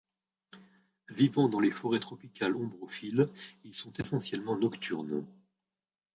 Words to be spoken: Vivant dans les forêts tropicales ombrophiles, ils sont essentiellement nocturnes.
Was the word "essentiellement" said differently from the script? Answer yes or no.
no